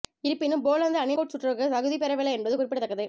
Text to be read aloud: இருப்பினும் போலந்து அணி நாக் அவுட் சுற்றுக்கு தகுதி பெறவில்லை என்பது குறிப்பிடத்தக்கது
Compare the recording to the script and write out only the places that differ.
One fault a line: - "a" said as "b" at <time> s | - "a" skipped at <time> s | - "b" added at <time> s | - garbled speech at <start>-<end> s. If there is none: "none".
- "நாக்" skipped at 1.1 s